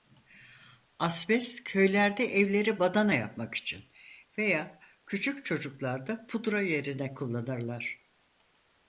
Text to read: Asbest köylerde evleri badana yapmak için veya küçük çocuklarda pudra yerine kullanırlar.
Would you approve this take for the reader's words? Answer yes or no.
yes